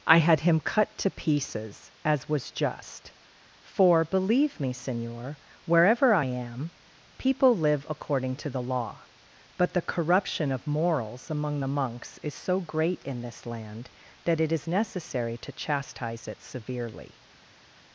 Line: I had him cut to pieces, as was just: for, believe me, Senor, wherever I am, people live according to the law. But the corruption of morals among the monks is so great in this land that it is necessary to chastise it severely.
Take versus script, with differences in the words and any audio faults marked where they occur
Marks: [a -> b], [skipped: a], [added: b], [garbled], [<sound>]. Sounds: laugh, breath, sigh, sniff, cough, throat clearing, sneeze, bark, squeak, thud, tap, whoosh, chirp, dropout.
I had him cut to pieces, as was just: for, believe me, Senor, wherever I am, people live according to the law. But the corruption of morals among the monks is so great in this land that it is necessary to chastise it severely.